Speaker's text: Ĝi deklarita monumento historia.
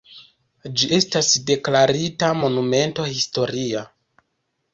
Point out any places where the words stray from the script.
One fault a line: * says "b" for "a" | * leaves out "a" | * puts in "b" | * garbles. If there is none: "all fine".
* puts in "estas"